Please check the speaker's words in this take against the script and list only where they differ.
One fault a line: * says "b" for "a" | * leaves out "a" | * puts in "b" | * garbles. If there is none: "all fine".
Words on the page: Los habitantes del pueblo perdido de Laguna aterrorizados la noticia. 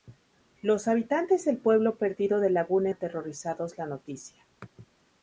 all fine